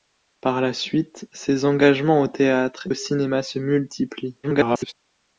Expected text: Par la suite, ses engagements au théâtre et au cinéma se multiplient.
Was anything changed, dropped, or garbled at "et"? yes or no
yes